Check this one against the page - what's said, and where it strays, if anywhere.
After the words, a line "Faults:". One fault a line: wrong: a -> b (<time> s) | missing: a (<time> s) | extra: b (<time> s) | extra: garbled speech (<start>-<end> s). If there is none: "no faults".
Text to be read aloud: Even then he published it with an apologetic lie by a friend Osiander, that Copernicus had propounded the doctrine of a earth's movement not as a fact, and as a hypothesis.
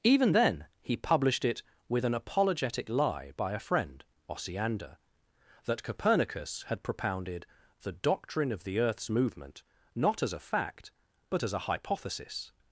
Even then he published it with an apologetic lie by a friend Osiander, that Copernicus had propounded the doctrine of the earth's movement not as a fact, but as a hypothesis.
Faults:
wrong: a -> the (8.6 s)
wrong: and -> but (11.3 s)